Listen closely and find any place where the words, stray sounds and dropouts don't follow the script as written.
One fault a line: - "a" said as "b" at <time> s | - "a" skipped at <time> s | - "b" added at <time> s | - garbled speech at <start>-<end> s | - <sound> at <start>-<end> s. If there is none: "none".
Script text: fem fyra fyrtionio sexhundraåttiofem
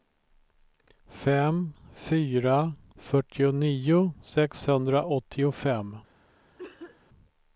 - cough at 6.6-7.0 s